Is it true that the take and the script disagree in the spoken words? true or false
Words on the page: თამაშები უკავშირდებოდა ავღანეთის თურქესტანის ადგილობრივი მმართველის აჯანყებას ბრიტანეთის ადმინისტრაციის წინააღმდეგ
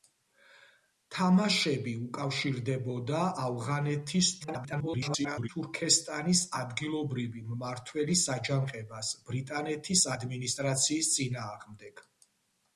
true